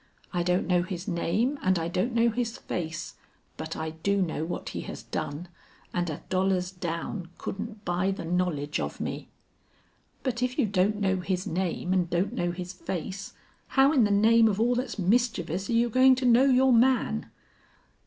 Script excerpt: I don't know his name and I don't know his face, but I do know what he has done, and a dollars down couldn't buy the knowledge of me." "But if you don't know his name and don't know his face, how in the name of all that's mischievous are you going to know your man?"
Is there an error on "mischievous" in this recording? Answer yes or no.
no